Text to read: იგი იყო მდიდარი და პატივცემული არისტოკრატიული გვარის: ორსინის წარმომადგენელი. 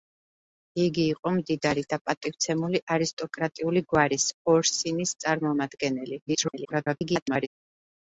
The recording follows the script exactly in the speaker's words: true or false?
false